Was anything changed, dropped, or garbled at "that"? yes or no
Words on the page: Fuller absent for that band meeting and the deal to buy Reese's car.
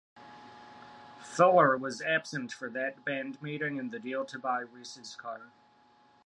no